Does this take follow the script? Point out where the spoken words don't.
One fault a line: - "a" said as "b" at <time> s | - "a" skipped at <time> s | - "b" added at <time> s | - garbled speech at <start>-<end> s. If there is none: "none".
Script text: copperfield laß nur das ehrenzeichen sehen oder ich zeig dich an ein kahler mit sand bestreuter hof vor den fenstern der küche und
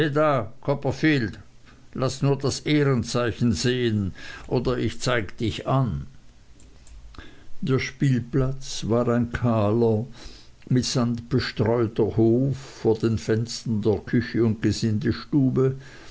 - "der spielplatz war" added at 7.6 s